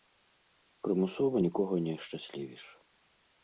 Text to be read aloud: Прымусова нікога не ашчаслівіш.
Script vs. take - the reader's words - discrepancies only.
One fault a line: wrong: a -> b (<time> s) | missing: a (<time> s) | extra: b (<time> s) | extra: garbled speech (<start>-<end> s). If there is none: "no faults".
no faults